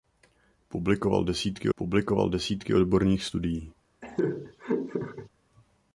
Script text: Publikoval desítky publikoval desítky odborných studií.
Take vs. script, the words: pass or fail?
pass